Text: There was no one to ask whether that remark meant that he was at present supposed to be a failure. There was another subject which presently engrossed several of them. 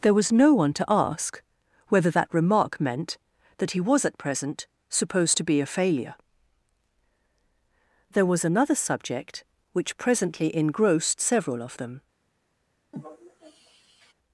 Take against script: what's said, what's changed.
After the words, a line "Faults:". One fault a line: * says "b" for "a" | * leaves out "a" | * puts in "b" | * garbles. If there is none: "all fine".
There was no one to ask whether that remark meant that he was at present supposed to be a failure. There was another subject which presently engrossed several of them.
Faults:
all fine